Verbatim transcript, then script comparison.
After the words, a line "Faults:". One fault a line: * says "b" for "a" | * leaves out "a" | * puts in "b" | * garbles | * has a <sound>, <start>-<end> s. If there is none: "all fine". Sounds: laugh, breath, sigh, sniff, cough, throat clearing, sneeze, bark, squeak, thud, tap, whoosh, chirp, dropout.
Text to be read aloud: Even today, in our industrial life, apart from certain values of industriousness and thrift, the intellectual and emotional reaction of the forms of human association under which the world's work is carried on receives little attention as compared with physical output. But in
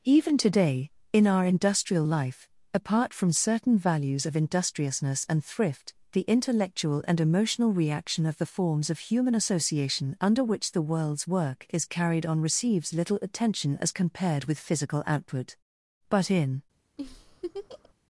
Even today, in our industrial life, apart from certain values of industriousness and thrift, the intellectual and emotional reaction of the forms of human association under which the world's work is carried on receives little attention as compared with physical output. But in
Faults:
* has a laugh, 17.0-17.9 s